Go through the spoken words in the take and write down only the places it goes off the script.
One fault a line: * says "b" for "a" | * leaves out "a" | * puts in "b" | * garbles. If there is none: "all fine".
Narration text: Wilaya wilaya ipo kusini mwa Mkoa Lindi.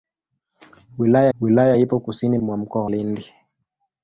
all fine